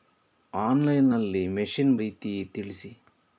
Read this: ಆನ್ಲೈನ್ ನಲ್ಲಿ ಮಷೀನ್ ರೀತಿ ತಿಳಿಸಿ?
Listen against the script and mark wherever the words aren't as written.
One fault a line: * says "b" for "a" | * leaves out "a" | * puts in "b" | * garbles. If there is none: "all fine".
all fine